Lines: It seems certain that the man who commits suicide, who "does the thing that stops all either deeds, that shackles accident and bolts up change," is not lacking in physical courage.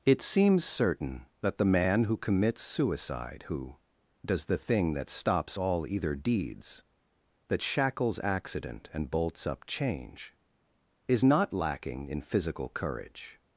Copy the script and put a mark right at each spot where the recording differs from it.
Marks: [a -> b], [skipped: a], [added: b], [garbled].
It seems certain that the man who commits suicide, who "does the thing that stops all either deeds, that shackles accident and bolts up change," is not lacking in physical courage.